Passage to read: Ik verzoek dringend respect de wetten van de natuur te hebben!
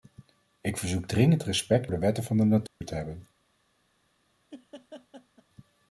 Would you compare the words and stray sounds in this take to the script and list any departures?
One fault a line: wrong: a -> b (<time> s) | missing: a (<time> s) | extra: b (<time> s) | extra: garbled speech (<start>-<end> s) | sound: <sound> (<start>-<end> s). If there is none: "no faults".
sound: dropout (2.7-2.8 s)
sound: laugh (4.5-5.4 s)